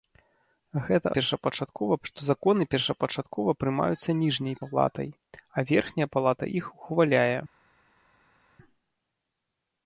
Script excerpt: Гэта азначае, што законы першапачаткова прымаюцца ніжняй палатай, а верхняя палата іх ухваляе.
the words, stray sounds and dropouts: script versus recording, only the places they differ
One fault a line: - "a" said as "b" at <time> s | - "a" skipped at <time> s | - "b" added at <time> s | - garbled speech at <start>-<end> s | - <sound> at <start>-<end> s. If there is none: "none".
- "азначае" said as "першапачаткова" at 1.1 s